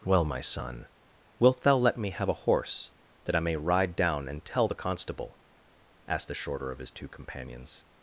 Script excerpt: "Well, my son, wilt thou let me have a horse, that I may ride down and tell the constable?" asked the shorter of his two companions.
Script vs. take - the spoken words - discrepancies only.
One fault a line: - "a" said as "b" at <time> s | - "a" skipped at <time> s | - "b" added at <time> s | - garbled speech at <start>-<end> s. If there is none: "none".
none